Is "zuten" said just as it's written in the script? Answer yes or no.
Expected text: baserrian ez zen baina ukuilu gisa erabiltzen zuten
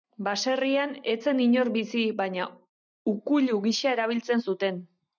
yes